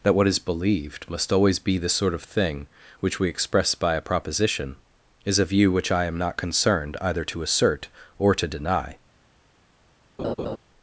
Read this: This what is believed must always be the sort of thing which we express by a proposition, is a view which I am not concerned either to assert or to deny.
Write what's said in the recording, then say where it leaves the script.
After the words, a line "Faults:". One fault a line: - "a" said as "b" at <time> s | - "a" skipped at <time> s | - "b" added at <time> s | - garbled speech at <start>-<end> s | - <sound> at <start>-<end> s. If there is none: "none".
That what is believed must always be the sort of thing which we express by a proposition, is a view which I am not concerned either to assert or to deny.
Faults:
- "This" said as "That" at 0.0 s
- laugh at 10.2-10.6 s